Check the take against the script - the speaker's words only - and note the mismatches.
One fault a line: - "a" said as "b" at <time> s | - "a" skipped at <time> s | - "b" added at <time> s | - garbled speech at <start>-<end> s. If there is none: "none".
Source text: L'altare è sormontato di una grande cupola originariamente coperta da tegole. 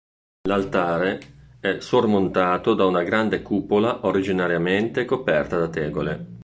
- "di" said as "da" at 2.7 s